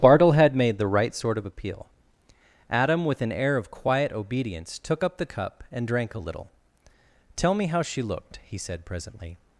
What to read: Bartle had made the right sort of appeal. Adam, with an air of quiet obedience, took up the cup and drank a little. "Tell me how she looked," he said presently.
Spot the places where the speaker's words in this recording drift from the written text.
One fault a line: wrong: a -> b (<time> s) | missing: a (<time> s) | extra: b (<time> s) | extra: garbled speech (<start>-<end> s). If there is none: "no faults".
no faults